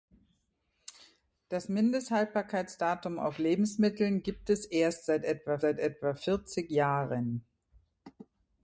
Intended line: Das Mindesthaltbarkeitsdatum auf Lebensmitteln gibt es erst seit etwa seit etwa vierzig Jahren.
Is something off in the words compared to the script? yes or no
no